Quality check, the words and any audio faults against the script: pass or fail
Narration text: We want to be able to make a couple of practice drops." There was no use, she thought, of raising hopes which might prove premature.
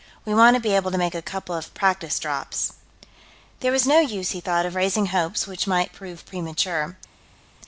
fail